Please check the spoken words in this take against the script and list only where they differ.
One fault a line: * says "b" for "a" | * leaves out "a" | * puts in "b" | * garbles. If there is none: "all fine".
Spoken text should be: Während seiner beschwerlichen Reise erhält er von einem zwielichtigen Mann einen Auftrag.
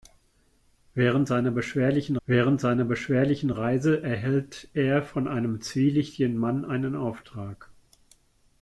* puts in "während seiner beschwerlichen"